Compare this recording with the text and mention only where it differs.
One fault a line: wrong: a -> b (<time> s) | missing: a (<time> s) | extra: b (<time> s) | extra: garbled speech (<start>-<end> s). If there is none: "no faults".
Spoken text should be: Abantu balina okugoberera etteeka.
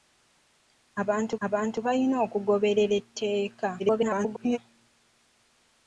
extra: abantu (1.5 s)
extra: garbled speech (3.8-4.6 s)